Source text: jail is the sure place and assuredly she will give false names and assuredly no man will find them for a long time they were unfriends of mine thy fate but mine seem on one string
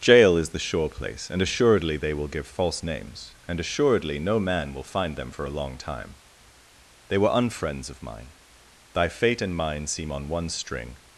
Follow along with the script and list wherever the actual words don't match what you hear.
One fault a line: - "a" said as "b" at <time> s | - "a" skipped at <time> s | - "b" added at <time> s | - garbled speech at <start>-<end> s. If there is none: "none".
- "she" said as "they" at 1.9 s
- "but" said as "and" at 9.4 s